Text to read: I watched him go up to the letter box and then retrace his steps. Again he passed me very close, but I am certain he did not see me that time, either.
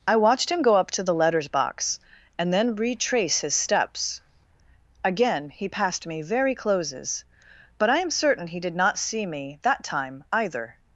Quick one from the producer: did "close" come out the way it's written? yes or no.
no